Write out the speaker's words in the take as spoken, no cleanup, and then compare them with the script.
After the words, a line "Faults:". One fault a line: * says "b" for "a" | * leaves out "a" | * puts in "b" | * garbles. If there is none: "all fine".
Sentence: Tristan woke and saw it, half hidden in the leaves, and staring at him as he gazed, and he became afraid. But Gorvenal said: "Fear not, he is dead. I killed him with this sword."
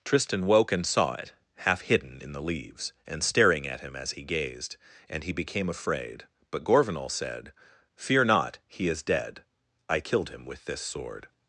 Tristan woke and saw it, half hidden in the leaves, and staring at him as he gazed, and he became afraid. But Gorvenal said: "Fear not, he is dead. I killed him with this sword."
Faults:
all fine